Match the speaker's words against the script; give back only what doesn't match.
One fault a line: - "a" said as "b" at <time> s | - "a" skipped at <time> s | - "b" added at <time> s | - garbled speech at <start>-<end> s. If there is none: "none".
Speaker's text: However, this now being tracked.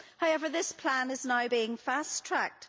- "plan is" added at 0.7 s
- "fast" added at 1.8 s